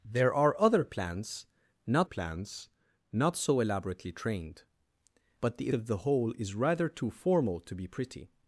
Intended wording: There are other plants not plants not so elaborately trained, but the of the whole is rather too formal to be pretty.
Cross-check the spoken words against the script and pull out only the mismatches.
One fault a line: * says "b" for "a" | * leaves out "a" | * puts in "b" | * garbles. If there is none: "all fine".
all fine